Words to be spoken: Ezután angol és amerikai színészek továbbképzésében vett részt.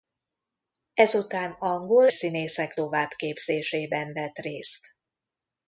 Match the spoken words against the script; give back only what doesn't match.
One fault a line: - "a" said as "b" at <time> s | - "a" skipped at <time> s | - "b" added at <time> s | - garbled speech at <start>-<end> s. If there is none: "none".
- "és amerikai" skipped at 2.1 s